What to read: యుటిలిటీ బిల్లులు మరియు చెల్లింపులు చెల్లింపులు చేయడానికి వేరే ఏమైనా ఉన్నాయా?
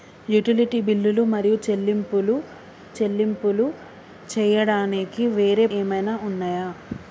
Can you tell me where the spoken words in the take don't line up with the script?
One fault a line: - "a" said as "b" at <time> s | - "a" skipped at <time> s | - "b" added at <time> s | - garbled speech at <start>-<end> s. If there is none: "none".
none